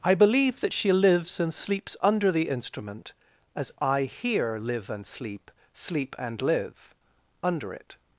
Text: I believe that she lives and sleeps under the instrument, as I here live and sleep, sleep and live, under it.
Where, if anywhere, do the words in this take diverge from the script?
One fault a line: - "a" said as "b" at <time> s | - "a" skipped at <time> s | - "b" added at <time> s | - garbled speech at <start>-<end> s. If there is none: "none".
none